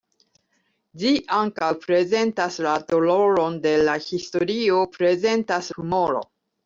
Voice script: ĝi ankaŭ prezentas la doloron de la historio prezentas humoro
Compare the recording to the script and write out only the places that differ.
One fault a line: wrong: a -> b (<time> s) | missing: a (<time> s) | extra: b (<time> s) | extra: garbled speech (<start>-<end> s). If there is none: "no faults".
no faults